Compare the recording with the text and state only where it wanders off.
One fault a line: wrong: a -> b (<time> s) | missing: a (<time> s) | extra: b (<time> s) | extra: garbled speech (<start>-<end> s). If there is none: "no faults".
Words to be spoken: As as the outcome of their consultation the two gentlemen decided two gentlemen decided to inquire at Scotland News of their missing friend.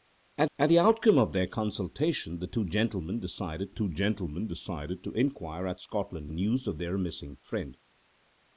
no faults